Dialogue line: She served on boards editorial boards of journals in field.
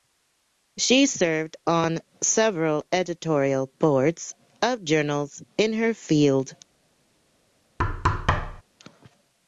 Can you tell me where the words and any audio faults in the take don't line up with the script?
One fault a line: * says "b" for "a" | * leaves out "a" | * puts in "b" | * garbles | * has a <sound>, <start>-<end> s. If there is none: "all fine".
* says "several" for "boards"
* puts in "her"
* has a thud, 7.8-8.6 s